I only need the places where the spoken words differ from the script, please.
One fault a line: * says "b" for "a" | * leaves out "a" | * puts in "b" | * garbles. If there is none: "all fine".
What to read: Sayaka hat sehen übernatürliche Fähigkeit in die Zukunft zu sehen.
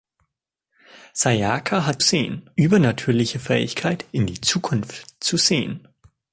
all fine